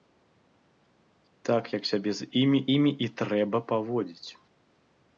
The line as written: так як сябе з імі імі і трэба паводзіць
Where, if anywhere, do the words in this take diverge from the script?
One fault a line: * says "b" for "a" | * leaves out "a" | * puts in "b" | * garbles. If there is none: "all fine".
all fine